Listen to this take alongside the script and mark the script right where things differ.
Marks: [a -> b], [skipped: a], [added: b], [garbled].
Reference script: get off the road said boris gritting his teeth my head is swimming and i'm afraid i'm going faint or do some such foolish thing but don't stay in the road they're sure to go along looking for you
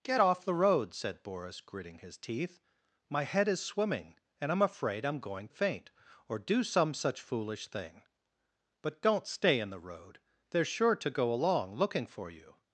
get off the road said boris gritting his teeth my head is swimming and i'm afraid i'm going faint or do some such foolish thing but don't stay in the road they're sure to go along looking for you